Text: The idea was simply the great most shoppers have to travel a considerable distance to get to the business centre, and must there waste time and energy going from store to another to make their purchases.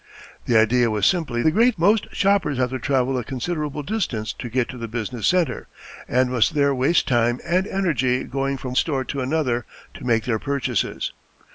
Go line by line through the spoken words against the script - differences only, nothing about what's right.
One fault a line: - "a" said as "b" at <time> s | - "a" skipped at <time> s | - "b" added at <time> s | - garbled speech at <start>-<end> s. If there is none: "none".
none